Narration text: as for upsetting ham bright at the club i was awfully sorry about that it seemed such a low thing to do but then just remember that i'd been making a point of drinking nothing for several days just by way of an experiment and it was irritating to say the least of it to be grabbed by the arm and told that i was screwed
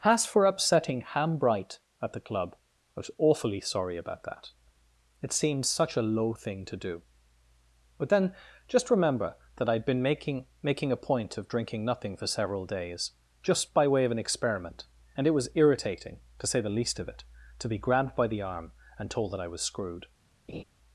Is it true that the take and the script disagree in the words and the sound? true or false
true